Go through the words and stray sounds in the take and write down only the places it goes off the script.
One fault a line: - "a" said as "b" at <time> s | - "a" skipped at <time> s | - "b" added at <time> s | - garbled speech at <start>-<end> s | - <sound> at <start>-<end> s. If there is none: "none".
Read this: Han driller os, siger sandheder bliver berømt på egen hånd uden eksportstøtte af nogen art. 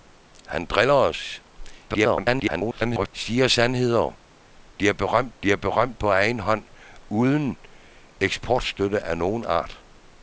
- garbled speech at 1.9-3.1 s
- "bliver berømt" added at 5.4 s